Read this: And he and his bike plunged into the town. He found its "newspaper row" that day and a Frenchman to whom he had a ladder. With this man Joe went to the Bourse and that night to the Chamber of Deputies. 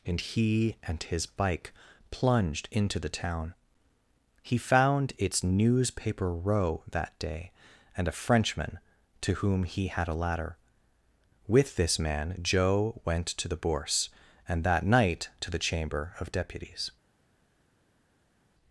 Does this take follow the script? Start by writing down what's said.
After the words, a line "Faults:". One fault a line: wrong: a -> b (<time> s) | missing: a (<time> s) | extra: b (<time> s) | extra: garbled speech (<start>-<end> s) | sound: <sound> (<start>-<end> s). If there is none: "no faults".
And he and his bike plunged into the town. He found its "newspaper row" that day and a Frenchman to whom he had a ladder. With this man Joe went to the Bourse and that night to the Chamber of Deputies.
Faults:
no faults